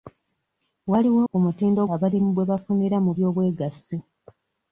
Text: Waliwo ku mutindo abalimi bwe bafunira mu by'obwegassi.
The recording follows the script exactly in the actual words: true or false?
true